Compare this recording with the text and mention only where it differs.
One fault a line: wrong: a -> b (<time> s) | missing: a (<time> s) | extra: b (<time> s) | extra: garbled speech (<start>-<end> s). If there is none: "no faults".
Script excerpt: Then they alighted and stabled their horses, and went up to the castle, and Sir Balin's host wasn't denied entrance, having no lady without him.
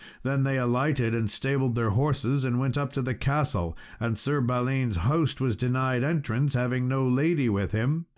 wrong: wasn't -> was (5.4 s)
wrong: without -> with (7.5 s)